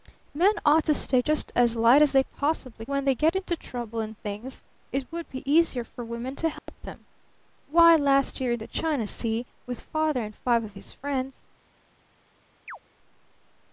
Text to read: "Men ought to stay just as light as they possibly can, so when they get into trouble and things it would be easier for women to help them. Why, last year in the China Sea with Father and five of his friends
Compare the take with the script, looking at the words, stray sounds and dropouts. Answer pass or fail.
fail